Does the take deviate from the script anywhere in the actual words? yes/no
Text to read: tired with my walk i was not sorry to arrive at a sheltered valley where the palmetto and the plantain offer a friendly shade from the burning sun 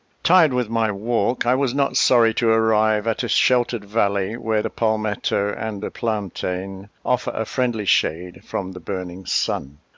no